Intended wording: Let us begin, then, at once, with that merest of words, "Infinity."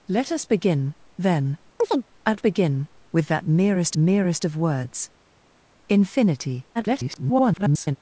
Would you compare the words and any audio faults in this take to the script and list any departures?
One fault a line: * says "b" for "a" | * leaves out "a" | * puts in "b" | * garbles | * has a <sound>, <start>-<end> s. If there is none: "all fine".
* has a chirp, 1.8-2.0 s
* says "begin" for "once"
* puts in "merest"
* garbles